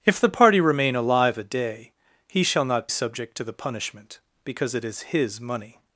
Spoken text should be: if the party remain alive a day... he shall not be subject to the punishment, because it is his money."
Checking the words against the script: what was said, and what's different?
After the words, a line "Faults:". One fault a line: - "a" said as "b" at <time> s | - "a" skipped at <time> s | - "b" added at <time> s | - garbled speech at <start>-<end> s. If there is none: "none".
if the party remain alive a day... he shall not subject to the punishment, because it is his money."
Faults:
- "be" skipped at 2.9 s